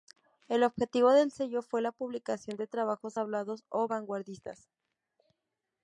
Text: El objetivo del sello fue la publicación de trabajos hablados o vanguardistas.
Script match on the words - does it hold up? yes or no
yes